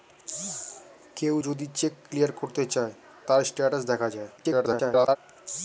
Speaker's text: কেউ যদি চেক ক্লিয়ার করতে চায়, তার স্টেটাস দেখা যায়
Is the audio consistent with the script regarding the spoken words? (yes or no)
no